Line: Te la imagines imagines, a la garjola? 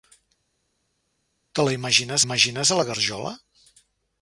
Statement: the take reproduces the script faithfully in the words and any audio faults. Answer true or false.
true